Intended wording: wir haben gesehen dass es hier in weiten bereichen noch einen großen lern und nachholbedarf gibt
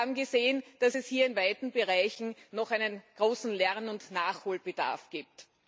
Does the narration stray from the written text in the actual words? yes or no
no